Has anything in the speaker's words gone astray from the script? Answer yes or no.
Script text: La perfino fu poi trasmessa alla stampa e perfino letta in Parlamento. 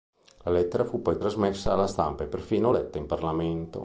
yes